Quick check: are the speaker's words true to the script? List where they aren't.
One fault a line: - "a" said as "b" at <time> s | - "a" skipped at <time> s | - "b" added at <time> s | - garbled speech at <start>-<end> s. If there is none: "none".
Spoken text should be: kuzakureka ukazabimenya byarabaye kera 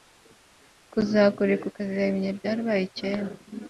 none